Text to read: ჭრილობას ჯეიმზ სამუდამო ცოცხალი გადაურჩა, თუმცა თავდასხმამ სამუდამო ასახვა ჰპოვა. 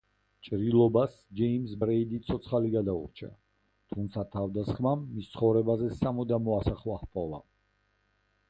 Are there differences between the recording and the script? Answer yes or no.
yes